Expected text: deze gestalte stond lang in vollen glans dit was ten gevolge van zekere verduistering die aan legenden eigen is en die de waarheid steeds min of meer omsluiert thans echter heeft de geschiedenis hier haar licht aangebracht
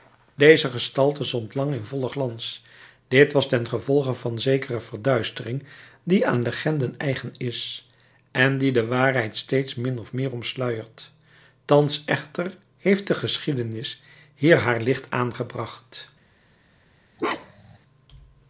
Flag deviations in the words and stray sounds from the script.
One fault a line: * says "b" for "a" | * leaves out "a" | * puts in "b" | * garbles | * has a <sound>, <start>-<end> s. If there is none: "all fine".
* has a bark, 17.2-17.8 s